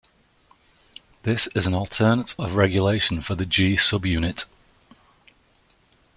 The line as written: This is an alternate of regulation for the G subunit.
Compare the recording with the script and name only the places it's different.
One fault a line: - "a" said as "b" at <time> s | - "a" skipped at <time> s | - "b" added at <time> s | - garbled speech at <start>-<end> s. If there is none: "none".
none